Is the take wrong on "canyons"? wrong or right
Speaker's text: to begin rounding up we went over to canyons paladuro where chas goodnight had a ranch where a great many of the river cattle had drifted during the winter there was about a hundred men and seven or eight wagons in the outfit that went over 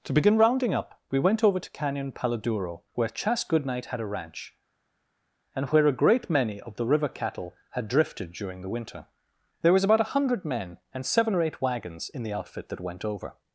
wrong